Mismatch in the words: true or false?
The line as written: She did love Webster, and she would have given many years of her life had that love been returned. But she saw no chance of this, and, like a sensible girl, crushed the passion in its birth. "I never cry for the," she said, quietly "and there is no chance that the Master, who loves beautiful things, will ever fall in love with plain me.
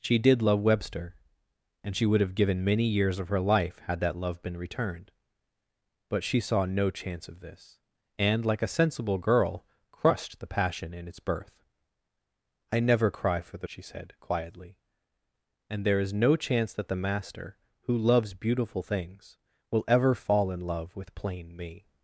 false